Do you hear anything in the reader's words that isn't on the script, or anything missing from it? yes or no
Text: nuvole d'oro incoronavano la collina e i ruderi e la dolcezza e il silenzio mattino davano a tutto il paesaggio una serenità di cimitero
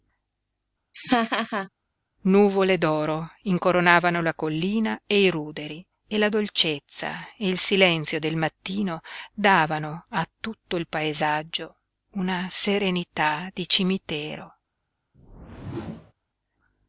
yes